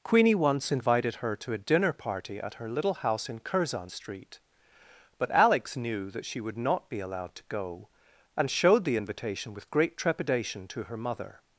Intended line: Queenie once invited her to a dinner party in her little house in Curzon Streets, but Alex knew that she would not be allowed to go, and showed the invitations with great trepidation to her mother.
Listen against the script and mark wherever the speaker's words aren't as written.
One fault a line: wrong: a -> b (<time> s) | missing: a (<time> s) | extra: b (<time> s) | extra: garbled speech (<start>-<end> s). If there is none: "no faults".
wrong: in -> at (2.4 s)
wrong: Streets -> Street (3.9 s)
wrong: invitations -> invitation (8.9 s)